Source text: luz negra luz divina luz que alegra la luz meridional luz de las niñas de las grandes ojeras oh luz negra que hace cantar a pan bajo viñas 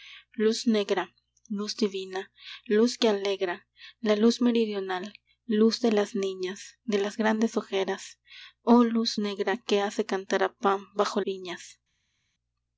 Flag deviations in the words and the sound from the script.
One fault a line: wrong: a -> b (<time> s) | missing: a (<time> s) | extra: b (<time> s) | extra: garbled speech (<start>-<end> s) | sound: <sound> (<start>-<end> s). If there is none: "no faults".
no faults